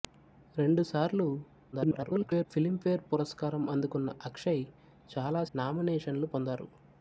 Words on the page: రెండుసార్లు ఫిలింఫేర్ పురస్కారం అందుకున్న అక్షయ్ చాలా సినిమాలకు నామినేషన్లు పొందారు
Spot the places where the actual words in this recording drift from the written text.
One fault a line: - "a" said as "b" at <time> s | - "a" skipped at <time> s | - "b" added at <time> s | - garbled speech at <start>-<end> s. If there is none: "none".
- garbled speech at 1.7-2.5 s
- "సినిమాలకు" skipped at 5.4 s